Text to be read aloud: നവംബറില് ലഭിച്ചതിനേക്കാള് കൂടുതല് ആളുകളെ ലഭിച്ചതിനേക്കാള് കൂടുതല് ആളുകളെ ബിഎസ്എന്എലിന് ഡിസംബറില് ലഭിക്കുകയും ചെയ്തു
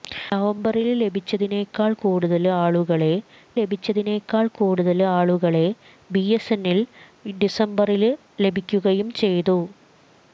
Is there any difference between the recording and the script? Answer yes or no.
no